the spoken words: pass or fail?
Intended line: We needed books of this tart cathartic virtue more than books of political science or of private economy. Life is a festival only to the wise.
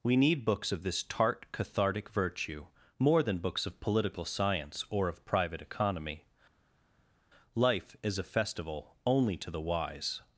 fail